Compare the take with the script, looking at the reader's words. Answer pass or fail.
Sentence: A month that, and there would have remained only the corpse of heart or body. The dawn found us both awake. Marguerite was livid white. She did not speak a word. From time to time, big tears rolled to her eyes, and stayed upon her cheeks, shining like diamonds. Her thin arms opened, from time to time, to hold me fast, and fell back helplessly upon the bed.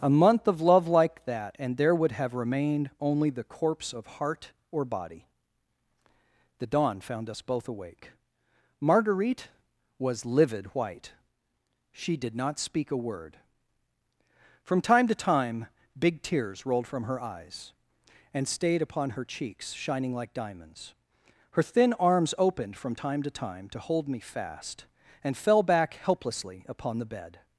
fail